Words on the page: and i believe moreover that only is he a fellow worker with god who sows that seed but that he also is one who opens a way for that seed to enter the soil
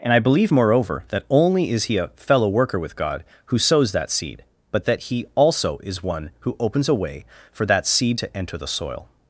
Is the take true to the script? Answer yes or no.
yes